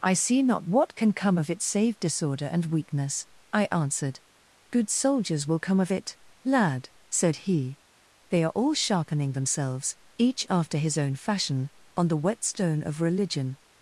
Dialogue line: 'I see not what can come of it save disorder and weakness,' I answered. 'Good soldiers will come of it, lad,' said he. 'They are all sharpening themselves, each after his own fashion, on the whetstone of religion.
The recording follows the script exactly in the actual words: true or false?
true